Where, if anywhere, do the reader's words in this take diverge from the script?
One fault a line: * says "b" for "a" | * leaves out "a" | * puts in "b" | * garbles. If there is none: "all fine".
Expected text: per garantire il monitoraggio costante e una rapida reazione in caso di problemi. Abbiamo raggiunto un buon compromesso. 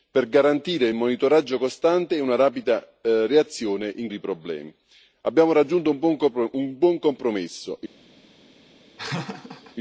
* leaves out "caso"